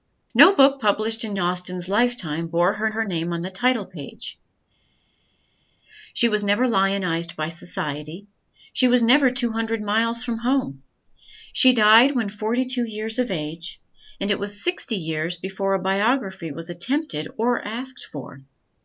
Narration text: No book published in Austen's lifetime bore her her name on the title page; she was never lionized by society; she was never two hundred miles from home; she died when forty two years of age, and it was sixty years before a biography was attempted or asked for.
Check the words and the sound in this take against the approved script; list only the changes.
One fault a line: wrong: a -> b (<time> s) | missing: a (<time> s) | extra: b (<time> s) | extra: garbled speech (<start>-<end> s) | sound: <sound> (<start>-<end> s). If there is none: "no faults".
no faults